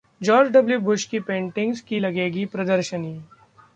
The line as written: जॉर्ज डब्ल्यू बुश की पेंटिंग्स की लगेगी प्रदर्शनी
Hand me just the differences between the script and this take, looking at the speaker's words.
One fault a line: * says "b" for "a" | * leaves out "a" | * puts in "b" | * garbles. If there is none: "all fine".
all fine